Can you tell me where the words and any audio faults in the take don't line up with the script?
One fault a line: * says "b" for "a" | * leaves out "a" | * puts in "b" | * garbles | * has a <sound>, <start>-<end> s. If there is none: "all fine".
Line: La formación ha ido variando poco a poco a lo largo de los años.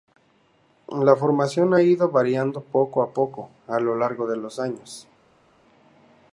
all fine